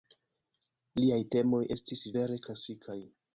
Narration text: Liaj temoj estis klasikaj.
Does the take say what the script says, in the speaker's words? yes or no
no